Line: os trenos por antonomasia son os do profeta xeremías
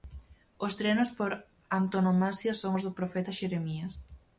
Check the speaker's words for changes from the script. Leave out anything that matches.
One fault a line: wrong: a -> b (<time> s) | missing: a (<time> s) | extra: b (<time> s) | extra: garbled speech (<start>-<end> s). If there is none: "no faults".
no faults